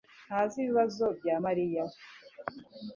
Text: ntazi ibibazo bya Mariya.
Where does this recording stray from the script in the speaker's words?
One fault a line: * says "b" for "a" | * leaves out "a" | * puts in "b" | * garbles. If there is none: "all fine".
all fine